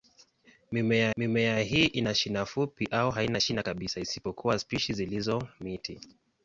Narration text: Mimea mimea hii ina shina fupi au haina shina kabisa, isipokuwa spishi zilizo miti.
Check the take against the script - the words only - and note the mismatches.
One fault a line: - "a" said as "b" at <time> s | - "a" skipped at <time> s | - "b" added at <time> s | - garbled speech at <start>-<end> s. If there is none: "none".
none